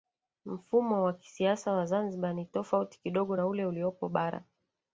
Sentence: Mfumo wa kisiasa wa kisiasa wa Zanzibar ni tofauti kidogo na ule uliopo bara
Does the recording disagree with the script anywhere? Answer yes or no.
yes